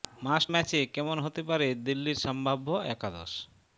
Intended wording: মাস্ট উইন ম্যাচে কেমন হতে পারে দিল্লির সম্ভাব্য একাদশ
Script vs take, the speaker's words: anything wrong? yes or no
yes